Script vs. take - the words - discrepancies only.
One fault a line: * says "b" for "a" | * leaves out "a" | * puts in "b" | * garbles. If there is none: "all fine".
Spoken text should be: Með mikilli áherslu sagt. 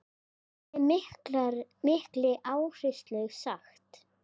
all fine